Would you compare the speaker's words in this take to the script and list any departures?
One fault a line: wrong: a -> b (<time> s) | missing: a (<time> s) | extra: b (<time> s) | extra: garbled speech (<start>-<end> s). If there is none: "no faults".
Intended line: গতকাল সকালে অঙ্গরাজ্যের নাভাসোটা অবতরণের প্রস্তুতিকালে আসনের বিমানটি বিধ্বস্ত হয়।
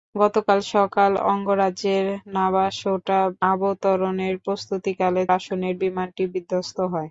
no faults